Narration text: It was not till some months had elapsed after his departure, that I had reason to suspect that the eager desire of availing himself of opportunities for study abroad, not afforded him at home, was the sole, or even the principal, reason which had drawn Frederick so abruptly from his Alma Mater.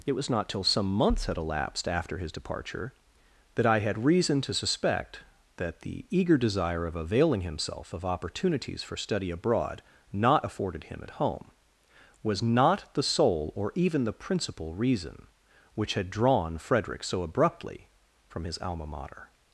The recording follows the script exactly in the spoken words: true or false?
false